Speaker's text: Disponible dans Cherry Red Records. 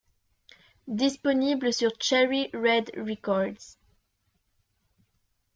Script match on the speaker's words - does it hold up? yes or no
no